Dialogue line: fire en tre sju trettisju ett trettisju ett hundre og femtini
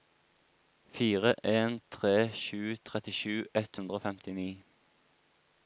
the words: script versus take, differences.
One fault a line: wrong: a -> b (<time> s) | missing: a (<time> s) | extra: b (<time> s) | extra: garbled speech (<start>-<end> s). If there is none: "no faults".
missing: trettisju ett (3.8 s)